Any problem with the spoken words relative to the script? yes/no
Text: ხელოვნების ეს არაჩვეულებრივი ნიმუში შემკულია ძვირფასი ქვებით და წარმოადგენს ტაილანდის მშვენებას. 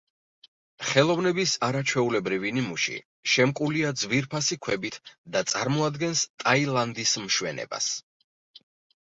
yes